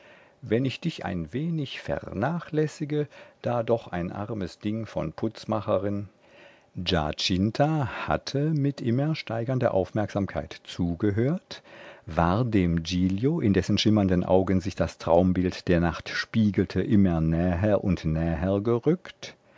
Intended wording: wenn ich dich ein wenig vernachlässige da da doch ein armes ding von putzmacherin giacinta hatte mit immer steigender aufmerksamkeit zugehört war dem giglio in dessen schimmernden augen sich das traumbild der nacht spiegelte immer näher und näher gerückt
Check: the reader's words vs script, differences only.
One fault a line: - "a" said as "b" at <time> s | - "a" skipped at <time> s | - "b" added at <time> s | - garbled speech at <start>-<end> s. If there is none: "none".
- "da" skipped at 3.6 s